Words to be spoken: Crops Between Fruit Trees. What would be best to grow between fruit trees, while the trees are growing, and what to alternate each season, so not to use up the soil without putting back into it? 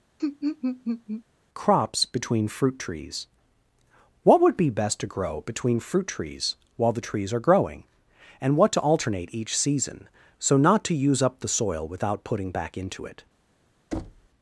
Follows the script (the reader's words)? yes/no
yes